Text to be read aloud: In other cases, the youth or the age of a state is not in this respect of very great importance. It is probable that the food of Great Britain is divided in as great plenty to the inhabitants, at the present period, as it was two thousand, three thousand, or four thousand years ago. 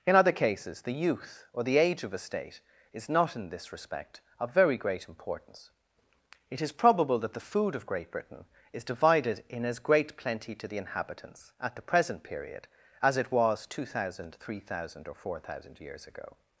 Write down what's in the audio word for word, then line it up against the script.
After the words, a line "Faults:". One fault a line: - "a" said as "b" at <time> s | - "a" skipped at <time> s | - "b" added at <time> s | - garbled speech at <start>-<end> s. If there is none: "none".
In other cases, the youth or the age of a state is not in this respect of very great importance. It is probable that the food of Great Britain is divided in as great plenty to the inhabitants, at the present period, as it was two thousand, three thousand, or four thousand years ago.
Faults:
none